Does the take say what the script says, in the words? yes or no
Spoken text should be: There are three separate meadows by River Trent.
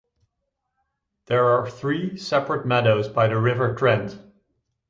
no